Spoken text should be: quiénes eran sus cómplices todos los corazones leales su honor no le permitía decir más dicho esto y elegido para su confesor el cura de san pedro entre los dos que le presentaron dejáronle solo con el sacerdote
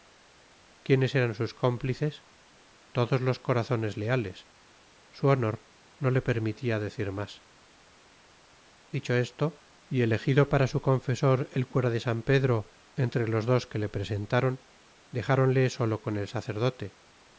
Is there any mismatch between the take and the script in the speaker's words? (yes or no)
no